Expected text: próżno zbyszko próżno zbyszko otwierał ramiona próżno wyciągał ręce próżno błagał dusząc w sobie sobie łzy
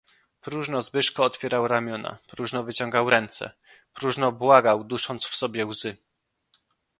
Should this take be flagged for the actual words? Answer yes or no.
yes